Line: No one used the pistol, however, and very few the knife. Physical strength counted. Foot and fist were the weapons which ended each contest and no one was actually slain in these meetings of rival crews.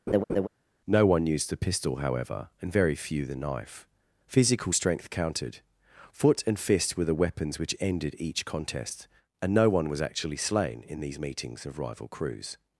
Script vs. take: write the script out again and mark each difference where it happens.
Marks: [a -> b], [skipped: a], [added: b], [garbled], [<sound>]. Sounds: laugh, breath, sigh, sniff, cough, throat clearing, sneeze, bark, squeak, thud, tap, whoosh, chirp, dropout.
[laugh] No one used the pistol, however, and very few the knife. Physical strength counted. Foot and fist were the weapons which ended each contest and no one was actually slain in these meetings of rival crews.